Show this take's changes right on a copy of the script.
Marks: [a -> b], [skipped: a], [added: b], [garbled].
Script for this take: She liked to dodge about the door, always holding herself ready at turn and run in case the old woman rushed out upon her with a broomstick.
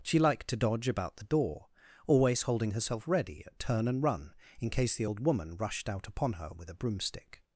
She liked to dodge about the door, always holding herself ready at turn and run in case the old woman rushed out upon her with a broomstick.